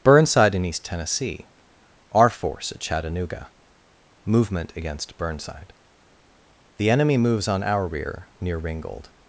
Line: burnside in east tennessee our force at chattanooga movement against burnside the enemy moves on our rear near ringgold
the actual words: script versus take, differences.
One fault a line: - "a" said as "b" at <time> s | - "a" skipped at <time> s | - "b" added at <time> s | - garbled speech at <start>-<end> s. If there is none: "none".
none